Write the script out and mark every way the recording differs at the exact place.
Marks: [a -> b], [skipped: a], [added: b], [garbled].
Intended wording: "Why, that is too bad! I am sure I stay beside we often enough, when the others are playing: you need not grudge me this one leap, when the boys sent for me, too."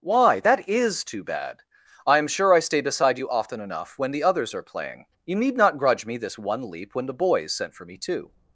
"Why, that is too bad! I am sure I stay beside [we -> you] often enough, when the others are playing: you need not grudge me this one leap, when the boys sent for me, too."